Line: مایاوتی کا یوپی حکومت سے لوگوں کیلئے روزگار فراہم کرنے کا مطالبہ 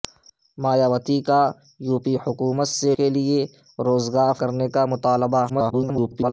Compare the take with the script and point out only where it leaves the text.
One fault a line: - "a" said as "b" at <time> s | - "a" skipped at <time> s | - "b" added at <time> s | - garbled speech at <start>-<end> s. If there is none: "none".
- "لوگوں" skipped at 2.9 s
- "فراہم" skipped at 4.3 s
- garbled speech at 5.5-6.3 s